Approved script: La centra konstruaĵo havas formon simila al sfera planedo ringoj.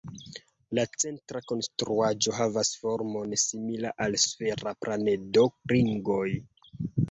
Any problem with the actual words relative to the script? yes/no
no